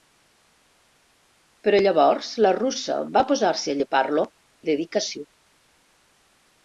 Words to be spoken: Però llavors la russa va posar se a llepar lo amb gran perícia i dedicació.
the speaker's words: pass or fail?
fail